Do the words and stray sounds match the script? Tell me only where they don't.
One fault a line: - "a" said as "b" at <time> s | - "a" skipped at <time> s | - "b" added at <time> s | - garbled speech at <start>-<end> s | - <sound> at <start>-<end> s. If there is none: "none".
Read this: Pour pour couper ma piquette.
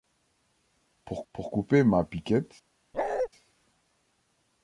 - bark at 2.9-3.3 s